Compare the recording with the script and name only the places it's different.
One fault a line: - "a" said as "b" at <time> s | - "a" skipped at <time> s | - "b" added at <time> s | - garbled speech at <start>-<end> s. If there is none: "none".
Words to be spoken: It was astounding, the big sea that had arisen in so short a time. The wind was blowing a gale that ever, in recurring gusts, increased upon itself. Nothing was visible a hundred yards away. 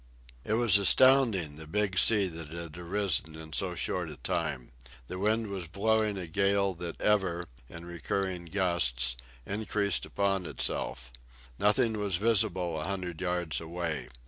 none